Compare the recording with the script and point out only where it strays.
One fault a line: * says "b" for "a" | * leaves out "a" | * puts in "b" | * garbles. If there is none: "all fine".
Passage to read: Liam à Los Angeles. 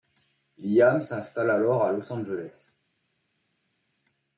* puts in "s'installe alors"